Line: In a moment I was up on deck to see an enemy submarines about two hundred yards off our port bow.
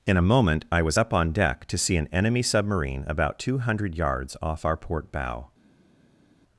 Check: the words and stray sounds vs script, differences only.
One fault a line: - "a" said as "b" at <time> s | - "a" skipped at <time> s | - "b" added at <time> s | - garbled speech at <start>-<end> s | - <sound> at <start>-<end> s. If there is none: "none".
- "submarines" said as "submarine" at 2.4 s